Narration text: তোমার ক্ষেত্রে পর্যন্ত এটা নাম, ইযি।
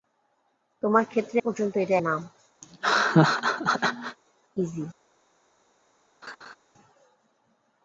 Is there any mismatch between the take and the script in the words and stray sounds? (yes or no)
yes